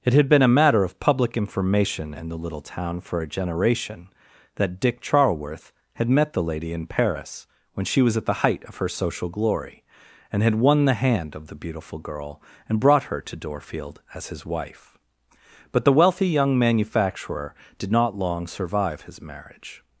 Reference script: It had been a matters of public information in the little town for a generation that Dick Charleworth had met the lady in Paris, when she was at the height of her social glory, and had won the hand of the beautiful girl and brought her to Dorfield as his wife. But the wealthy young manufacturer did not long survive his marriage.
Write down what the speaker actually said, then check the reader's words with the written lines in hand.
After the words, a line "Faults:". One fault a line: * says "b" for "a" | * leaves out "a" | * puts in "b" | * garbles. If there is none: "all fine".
It had been a matter of public information in the little town for a generation that Dick Charleworth had met the lady in Paris, when she was at the height of her social glory, and had won the hand of the beautiful girl and brought her to Dorfield as his wife. But the wealthy young manufacturer did not long survive his marriage.
Faults:
* says "matter" for "matters"